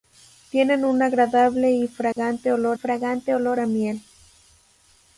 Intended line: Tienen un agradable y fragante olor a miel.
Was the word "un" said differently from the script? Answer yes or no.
no